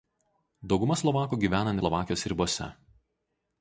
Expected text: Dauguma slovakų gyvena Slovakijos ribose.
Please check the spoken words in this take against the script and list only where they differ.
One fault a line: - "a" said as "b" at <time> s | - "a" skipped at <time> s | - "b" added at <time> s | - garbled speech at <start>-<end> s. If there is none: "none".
none